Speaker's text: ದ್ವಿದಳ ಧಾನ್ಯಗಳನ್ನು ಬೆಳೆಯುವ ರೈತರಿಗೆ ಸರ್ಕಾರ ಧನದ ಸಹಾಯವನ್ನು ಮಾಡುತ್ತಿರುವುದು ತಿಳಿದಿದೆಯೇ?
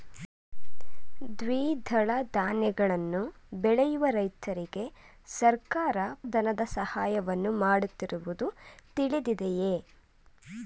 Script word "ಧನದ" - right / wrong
right